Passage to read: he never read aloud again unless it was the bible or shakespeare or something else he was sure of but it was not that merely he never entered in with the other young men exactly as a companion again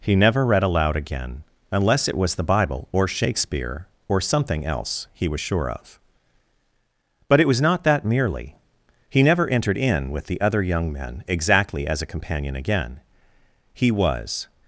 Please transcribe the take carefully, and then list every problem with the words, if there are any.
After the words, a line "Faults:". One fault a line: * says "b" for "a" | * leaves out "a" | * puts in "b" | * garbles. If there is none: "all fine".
he never read aloud again unless it was the bible or shakespeare or something else he was sure of but it was not that merely he never entered in with the other young men exactly as a companion again he was
Faults:
* puts in "he was"